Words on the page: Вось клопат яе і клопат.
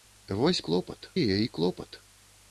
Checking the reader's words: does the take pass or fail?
pass